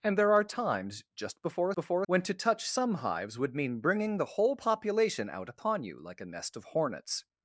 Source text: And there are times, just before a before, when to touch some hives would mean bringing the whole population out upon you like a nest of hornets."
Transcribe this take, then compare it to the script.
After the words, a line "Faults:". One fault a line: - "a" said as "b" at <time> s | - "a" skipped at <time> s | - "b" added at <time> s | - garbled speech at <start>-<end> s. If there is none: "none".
And there are times, just before a before, when to touch some hives would mean bringing the whole population out upon you like a nest of hornets."
Faults:
none